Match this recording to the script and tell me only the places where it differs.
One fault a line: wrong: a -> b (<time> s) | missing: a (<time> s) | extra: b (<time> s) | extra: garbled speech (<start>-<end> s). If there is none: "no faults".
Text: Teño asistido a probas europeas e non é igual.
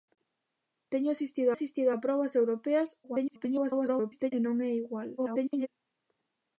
extra: asistido (1.5 s)
extra: garbled speech (3.0-4.3 s)
extra: garbled speech (5.2-5.7 s)